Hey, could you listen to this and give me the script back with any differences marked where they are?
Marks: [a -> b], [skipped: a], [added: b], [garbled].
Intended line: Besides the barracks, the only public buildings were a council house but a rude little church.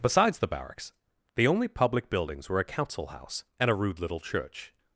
Besides the barracks, the only public buildings were a council house [but -> and] a rude little church.